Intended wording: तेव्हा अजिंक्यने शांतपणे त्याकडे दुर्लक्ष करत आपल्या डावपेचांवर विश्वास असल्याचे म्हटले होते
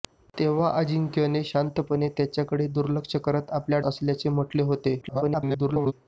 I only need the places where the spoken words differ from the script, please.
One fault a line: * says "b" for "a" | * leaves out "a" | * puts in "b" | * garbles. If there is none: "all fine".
* leaves out "डावपेचांवर विश्वास"
* garbles